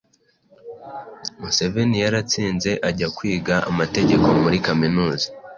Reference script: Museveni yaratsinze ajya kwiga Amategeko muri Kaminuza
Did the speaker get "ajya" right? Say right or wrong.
right